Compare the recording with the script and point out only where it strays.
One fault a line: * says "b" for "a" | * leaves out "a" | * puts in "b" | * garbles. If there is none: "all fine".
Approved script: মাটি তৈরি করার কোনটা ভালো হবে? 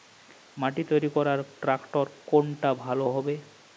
* puts in "ট্রাক্টর"